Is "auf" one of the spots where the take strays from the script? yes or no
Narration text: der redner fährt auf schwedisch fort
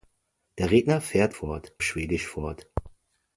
yes